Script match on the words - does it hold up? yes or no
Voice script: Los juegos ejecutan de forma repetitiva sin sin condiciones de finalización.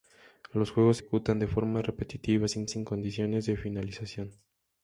yes